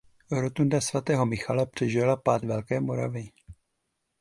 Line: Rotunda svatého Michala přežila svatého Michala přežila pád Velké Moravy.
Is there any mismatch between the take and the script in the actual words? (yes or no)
yes